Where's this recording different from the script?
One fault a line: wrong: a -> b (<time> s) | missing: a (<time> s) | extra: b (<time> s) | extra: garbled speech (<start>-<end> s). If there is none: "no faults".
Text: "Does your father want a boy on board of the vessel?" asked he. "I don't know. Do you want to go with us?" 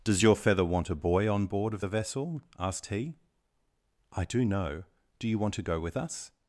wrong: father -> feather (0.3 s)
wrong: don't -> do (4.2 s)